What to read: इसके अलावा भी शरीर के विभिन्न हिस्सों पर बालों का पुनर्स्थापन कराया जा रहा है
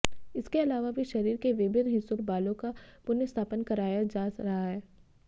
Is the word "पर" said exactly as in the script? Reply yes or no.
no